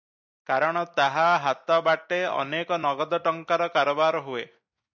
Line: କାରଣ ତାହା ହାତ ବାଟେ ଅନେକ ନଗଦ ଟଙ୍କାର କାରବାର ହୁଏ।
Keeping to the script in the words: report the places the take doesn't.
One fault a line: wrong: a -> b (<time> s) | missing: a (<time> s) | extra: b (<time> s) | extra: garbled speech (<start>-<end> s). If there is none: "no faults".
no faults